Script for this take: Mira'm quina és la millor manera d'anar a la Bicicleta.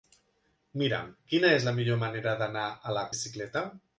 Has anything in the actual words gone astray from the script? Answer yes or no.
no